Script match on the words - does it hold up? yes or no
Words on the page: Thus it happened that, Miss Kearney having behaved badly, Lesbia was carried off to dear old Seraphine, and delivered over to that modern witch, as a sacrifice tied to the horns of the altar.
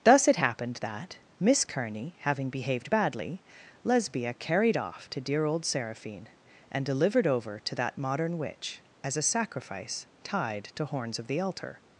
no